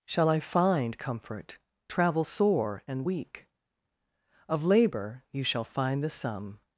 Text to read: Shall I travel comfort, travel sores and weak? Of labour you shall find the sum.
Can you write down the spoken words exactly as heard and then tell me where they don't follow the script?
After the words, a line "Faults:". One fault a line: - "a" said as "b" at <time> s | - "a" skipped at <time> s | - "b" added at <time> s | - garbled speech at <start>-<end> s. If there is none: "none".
Shall I find comfort, travel sore and weak? Of labour you shall find the sum.
Faults:
- "travel" said as "find" at 0.4 s
- "sores" said as "sore" at 2.2 s